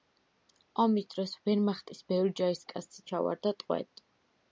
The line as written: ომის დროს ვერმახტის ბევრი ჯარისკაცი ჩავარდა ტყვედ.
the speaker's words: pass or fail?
pass